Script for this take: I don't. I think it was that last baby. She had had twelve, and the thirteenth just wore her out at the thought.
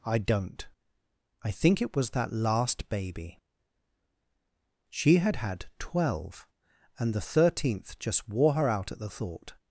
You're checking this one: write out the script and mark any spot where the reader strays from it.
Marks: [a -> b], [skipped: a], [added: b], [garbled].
I don't. I think it was that last baby. She had had twelve, and the thirteenth just wore her out at the thought.